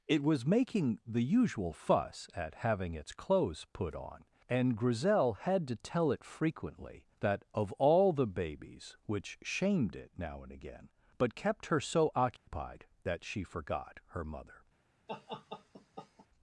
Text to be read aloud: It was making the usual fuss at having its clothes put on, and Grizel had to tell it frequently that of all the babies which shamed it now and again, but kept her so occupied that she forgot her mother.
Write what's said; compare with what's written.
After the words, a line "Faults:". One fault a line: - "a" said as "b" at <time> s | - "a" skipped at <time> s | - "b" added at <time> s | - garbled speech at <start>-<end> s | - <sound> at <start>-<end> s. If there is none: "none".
It was making the usual fuss at having its clothes put on, and Grizel had to tell it frequently that of all the babies which shamed it now and again, but kept her so occupied that she forgot her mother.
Faults:
- dropout at 12.4-12.5 s
- laugh at 15.1-16.3 s